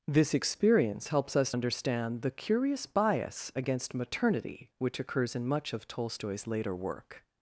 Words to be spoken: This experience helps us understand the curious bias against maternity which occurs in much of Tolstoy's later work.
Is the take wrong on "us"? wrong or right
right